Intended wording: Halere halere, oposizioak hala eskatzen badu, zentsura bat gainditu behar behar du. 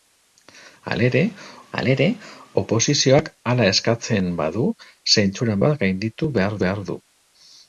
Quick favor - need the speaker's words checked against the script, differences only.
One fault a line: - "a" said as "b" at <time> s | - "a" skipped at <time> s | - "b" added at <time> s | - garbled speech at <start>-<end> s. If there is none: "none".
none